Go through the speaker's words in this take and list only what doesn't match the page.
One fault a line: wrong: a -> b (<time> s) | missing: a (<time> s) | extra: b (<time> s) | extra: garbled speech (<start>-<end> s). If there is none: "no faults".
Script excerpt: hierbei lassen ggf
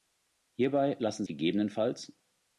no faults